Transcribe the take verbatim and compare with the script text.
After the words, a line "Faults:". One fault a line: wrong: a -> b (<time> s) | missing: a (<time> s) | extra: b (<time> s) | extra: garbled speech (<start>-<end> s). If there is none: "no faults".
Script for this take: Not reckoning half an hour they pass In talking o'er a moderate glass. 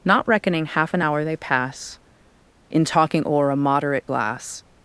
Not reckoning half an hour they pass In talking o'er a moderate glass.
Faults:
no faults